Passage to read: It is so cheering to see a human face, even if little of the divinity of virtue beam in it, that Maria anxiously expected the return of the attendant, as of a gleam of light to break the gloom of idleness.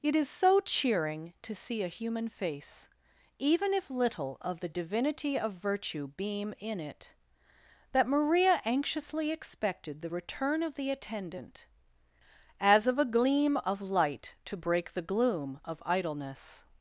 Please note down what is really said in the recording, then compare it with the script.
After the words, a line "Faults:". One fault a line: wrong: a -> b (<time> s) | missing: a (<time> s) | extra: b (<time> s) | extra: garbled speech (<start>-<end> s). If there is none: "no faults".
It is so cheering to see a human face, even if little of the divinity of virtue beam in it, that Maria anxiously expected the return of the attendant, as of a gleam of light to break the gloom of idleness.
Faults:
no faults